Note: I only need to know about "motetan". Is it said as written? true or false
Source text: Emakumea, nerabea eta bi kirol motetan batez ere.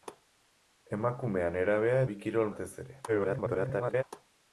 false